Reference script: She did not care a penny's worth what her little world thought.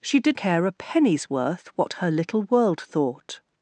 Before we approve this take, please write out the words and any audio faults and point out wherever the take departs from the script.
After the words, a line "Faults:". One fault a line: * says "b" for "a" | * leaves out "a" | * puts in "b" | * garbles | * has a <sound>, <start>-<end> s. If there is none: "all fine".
She did care a penny's worth what her little world thought.
Faults:
* leaves out "not"